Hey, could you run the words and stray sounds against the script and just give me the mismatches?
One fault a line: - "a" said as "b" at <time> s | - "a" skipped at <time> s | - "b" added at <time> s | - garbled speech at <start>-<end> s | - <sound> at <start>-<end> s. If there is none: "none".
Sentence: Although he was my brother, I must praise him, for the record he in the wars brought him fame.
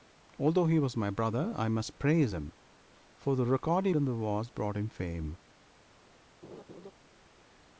- laugh at 6.4-6.9 s